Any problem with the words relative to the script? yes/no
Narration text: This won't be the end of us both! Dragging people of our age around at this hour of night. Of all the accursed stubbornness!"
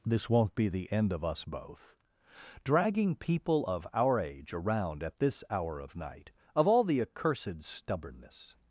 no